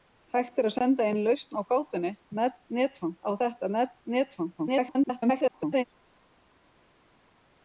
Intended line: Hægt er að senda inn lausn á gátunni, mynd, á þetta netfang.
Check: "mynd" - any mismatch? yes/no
yes